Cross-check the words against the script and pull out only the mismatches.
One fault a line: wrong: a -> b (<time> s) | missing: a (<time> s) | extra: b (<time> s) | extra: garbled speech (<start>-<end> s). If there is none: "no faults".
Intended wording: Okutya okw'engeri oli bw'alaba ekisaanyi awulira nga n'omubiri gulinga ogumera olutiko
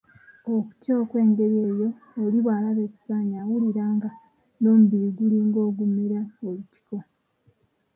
extra: eyo (1.7 s)